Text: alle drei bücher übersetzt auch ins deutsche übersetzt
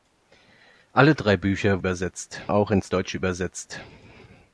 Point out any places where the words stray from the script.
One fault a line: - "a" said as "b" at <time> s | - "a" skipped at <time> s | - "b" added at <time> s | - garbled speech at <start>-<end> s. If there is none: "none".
none